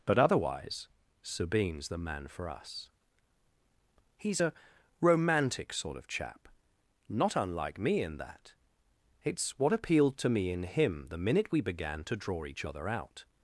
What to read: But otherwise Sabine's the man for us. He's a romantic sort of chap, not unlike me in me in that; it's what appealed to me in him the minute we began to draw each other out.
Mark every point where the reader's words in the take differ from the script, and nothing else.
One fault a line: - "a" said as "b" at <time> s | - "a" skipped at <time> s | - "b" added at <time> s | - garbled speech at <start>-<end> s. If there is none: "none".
- "me in" skipped at 8.2 s